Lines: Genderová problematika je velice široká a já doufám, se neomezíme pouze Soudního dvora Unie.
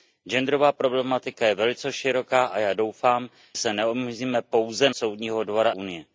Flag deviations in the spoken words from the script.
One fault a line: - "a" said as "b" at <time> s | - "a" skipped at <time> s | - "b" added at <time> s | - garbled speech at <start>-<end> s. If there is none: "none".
none